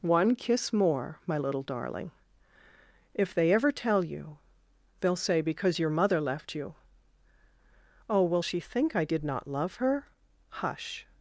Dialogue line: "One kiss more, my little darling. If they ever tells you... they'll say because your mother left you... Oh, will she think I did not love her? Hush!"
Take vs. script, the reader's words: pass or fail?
fail